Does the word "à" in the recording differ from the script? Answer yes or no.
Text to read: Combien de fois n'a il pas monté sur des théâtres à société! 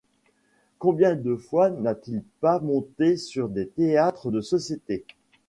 yes